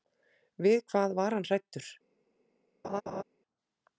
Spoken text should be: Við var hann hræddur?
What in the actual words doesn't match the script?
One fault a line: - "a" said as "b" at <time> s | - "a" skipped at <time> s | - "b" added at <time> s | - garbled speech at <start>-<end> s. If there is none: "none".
- "hvað" added at 0.9 s